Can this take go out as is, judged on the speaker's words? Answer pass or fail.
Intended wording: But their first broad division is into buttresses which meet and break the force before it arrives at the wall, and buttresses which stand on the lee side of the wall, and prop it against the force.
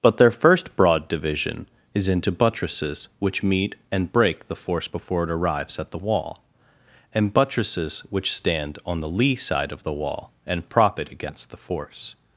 pass